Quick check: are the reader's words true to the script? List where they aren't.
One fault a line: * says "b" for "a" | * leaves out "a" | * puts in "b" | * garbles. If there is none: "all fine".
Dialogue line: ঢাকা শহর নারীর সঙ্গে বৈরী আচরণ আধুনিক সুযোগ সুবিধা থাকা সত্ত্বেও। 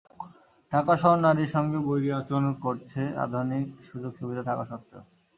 * puts in "করছে"